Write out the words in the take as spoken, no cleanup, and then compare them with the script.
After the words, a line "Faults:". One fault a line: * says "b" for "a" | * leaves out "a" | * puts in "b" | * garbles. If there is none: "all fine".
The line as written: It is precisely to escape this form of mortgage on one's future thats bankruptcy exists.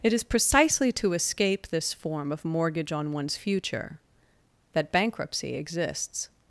It is precisely to escape this form of mortgage on one's future that bankruptcy exists.
Faults:
* says "that" for "thats"